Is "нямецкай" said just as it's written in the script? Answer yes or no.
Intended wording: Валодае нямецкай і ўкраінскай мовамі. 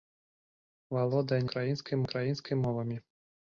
no